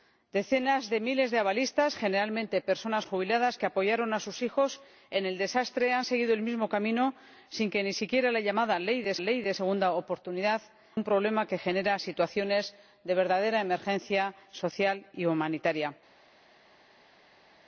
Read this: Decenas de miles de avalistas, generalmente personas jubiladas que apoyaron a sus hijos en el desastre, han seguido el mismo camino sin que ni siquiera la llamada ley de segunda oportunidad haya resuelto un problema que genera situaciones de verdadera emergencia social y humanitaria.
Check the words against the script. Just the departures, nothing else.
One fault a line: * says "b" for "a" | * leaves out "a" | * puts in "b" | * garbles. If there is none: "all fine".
* puts in "ley de"
* leaves out "haya resuelto"